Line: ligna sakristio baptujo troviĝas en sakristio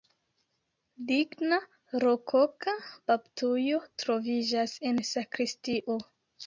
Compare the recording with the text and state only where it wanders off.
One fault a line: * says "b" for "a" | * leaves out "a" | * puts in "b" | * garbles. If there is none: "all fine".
* says "rokoka" for "sakristio"